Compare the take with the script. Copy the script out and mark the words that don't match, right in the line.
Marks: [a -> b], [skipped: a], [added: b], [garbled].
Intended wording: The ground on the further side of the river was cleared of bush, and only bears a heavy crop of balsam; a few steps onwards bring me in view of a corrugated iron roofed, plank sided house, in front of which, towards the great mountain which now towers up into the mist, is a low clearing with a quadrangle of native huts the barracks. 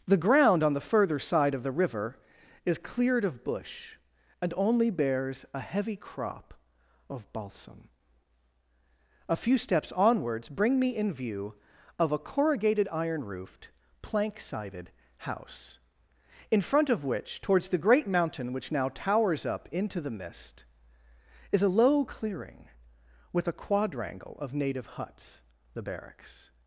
The ground on the further side of the river [was -> is] cleared of bush, and only bears a heavy crop of balsam; a few steps onwards bring me in view of a corrugated iron roofed, plank sided house, in front of which, towards the great mountain which now towers up into the mist, is a low clearing with a quadrangle of native huts the barracks.